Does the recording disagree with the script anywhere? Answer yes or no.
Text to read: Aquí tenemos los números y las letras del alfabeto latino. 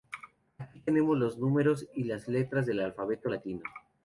no